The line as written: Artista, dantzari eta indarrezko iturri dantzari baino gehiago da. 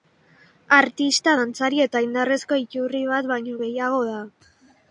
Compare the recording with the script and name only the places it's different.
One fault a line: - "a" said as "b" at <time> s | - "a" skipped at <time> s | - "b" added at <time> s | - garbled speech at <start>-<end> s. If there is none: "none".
- "dantzari" said as "bat" at 3.2 s